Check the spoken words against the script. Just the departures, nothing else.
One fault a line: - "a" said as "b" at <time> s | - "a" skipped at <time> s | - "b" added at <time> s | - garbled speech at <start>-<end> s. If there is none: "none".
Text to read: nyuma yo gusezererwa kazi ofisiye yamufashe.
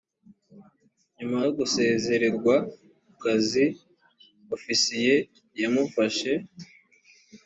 none